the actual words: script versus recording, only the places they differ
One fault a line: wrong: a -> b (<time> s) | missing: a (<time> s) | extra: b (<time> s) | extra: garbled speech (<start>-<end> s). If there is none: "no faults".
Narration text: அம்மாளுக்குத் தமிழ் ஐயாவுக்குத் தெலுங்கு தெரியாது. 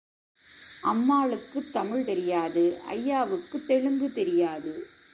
extra: தெரியாது (2.0 s)